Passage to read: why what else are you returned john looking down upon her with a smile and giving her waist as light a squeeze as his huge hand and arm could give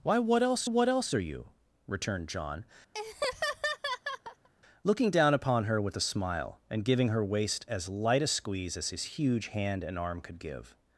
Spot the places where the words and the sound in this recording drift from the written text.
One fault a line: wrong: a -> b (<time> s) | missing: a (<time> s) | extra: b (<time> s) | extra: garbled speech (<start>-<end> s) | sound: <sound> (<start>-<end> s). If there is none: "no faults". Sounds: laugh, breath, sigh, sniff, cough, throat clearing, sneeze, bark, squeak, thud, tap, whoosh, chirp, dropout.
extra: what else (0.6 s)
sound: laugh (2.9-4.5 s)